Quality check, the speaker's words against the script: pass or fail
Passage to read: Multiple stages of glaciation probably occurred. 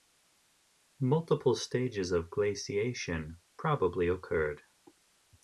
pass